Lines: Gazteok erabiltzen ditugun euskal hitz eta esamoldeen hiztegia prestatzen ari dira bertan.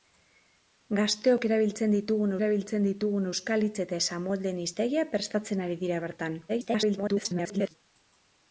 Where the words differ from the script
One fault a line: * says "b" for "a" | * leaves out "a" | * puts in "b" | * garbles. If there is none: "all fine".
* puts in "erabiltzen ditugun"
* garbles